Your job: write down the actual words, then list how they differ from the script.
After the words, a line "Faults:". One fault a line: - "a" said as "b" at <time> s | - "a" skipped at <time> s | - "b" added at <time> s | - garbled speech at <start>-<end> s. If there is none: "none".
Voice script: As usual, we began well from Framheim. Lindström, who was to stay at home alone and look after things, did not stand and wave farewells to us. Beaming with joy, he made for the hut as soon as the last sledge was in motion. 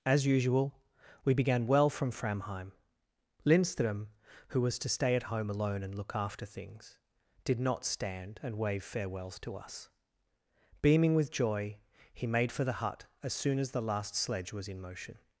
As usual, we began well from Framheim. Lindström, who was to stay at home alone and look after things, did not stand and wave farewells to us. Beaming with joy, he made for the hut as soon as the last sledge was in motion.
Faults:
none